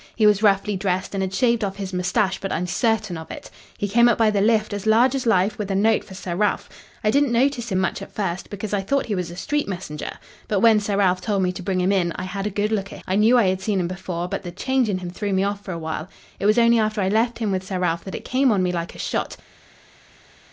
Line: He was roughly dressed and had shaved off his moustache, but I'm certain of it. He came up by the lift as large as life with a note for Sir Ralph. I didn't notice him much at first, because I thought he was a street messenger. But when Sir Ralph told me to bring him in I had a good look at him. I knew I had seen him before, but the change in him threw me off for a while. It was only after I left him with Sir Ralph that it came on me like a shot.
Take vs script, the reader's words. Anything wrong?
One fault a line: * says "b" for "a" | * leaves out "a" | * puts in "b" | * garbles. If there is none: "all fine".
* leaves out "him"